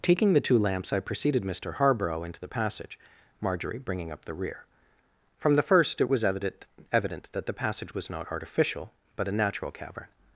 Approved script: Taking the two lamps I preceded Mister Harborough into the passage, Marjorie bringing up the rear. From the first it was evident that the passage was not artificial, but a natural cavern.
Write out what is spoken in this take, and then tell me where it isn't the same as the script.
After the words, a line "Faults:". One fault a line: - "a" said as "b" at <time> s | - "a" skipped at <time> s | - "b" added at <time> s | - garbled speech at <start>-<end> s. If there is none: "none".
Taking the two lamps I preceded Mister Harborough into the passage, Marjorie bringing up the rear. From the first it was evident evident that the passage was not artificial, but a natural cavern.
Faults:
- "evident" added at 6.9 s